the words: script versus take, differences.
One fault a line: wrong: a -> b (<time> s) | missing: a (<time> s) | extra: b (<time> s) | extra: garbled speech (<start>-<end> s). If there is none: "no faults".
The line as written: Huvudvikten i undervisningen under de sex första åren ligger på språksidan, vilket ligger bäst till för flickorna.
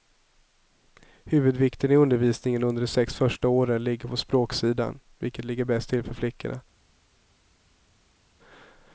no faults